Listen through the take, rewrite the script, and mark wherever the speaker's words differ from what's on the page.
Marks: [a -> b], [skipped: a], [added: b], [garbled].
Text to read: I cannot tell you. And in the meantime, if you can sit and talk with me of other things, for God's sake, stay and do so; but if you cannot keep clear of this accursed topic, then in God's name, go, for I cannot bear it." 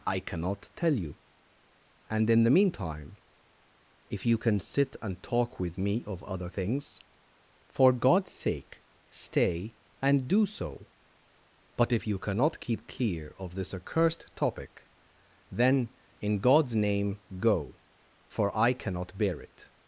I cannot tell you. And in the meantime, if you can sit and talk with me of other things, for God's sake, stay and do so; but if you cannot keep clear of this accursed topic, then in God's name, go, for I cannot bear it."